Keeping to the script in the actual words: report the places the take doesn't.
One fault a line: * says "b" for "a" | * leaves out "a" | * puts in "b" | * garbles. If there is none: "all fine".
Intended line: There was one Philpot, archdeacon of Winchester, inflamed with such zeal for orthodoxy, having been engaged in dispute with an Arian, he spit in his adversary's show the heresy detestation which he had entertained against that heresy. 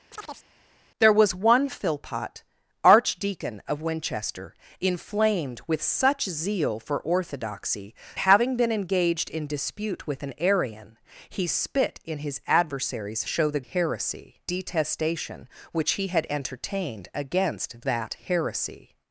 all fine